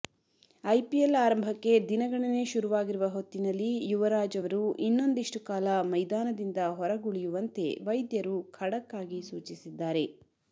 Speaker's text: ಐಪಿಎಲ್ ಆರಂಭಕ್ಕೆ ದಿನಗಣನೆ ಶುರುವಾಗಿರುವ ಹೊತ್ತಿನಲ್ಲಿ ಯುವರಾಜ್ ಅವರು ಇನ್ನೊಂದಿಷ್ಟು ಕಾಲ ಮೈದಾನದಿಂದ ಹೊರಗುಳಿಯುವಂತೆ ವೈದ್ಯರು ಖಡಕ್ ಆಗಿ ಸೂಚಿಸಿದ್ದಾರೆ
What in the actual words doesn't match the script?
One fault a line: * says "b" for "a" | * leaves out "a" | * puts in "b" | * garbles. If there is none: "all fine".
all fine